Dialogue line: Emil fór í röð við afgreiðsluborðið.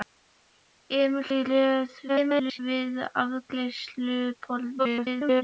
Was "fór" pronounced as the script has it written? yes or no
no